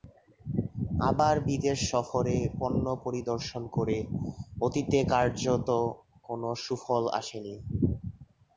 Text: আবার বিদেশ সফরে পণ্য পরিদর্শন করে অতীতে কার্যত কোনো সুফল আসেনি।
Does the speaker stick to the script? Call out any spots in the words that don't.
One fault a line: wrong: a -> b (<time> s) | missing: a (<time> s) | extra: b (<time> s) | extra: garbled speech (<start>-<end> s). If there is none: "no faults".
no faults